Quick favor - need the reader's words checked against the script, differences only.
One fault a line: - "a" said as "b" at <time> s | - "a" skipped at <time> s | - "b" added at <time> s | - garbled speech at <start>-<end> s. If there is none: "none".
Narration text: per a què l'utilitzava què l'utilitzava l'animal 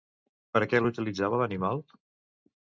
- "què l'utilitzava" skipped at 1.4 s